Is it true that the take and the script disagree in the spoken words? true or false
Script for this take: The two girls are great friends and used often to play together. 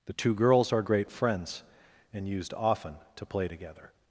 false